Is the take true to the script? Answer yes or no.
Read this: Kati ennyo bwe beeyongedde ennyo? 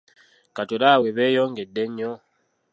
no